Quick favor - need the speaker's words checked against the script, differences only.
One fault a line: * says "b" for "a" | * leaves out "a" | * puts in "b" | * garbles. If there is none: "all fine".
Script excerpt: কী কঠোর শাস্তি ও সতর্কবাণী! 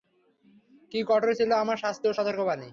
* puts in "ছিল আমার"